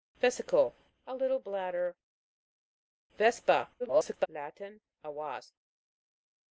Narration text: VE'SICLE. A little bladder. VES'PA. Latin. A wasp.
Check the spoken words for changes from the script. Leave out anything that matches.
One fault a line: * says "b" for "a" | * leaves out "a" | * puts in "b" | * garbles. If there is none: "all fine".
* garbles